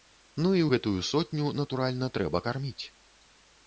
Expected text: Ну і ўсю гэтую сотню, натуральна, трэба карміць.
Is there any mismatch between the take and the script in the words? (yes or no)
yes